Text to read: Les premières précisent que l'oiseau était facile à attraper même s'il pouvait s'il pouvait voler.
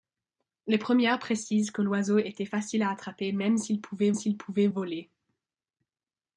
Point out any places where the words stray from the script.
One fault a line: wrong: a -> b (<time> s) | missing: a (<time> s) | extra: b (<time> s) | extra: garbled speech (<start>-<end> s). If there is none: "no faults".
no faults